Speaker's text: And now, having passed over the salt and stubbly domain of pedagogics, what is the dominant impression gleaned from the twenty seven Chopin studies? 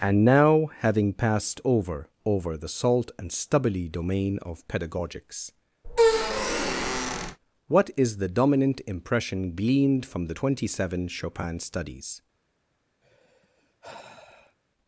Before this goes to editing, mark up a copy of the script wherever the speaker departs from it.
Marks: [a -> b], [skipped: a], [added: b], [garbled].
And now, having passed over [added: over] the salt and stubbly domain of pedagogics, what is the dominant impression gleaned from the twenty seven Chopin studies?